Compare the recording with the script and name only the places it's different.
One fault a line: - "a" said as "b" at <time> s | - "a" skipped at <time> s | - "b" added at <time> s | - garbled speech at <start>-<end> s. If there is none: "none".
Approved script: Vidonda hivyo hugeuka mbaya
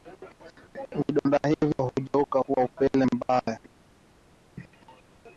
- "kuwa upele" added at 2.4 s